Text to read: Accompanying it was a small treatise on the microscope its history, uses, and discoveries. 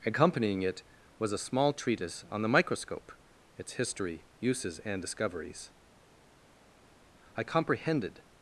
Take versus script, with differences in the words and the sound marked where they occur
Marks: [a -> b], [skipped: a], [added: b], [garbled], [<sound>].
Accompanying it was a small treatise on the microscope its history, uses, and discoveries. [added: I comprehended]